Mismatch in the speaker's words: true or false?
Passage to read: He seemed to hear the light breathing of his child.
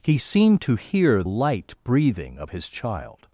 true